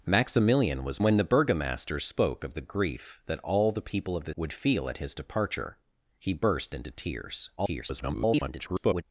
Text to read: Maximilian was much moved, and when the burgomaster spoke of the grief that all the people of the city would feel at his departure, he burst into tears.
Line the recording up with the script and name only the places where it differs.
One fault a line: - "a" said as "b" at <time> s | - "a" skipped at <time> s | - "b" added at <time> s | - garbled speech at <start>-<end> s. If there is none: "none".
- "much moved and" skipped at 1.0 s
- "city" skipped at 4.3 s
- garbled speech at 7.6-9.0 s